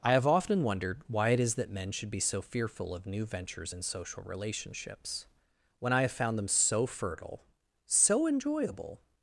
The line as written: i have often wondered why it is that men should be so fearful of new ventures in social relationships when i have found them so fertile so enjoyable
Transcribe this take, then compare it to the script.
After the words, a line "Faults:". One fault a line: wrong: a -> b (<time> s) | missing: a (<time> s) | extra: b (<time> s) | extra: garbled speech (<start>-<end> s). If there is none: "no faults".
i have often wondered why it is that men should be so fearful of new ventures in social relationships when i have found them so fertile so enjoyable
Faults:
no faults